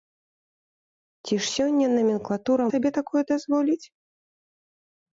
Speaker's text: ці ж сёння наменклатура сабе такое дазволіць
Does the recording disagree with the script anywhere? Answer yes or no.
no